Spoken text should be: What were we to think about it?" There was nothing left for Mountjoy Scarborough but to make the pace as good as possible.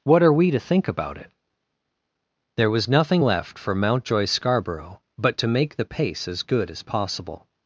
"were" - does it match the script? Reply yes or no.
no